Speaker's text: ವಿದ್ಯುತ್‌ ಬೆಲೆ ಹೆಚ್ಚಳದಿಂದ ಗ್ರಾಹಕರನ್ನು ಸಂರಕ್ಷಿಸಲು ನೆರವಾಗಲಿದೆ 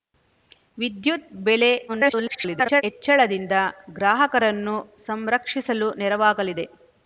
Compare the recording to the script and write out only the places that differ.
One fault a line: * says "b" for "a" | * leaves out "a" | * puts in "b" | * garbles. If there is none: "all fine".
* garbles